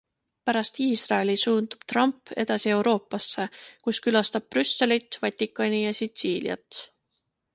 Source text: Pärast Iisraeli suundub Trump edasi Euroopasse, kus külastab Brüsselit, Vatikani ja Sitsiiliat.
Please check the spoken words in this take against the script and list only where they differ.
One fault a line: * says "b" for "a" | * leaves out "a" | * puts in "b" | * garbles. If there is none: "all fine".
all fine